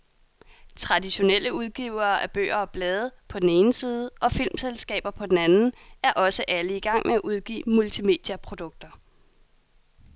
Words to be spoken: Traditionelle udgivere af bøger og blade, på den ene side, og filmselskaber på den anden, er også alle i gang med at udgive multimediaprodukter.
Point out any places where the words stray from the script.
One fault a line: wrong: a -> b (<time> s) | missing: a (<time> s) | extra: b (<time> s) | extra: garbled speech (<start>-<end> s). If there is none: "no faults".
no faults